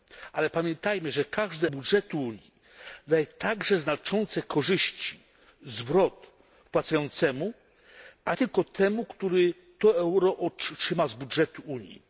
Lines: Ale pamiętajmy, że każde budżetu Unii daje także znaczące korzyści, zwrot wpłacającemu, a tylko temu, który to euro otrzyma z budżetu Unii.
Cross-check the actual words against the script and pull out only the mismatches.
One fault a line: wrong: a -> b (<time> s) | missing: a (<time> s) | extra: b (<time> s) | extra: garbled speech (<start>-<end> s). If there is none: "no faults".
no faults